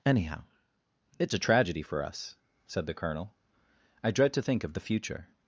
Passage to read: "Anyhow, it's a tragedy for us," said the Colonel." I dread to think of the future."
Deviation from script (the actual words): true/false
false